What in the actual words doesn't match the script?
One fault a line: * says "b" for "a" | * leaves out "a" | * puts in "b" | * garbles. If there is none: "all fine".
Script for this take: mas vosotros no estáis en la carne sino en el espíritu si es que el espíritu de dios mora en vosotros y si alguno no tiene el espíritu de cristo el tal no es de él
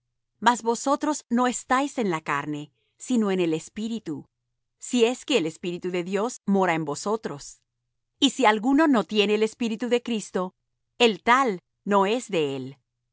all fine